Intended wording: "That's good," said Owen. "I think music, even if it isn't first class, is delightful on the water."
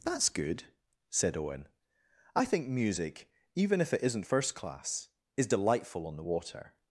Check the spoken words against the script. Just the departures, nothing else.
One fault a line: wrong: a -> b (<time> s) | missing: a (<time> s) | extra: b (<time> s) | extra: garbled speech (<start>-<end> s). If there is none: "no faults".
no faults